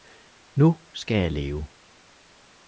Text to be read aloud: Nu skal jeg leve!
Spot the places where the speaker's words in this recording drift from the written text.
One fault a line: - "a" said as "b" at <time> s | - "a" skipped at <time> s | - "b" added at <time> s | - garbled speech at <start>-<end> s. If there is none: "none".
none